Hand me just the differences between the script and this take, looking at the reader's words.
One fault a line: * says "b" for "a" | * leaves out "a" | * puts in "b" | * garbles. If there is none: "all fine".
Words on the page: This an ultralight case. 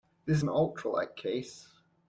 all fine